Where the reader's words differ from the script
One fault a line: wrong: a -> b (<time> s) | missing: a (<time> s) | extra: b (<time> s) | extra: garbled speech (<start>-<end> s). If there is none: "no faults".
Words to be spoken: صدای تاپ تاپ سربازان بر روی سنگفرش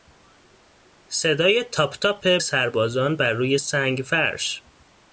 no faults